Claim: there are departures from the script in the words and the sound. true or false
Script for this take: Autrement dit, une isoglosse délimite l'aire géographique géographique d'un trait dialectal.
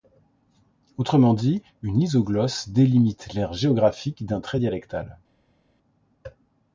true